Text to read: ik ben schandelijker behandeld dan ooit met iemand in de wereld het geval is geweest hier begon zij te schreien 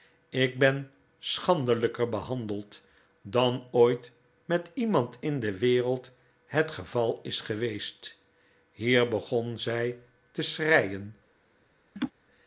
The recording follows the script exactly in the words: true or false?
true